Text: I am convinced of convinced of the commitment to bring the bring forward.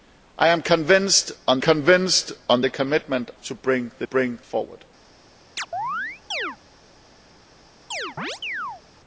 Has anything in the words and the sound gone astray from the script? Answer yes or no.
yes